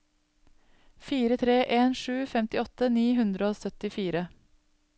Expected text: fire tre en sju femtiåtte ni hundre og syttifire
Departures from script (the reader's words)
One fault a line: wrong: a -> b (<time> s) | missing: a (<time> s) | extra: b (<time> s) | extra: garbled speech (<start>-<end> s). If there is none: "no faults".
no faults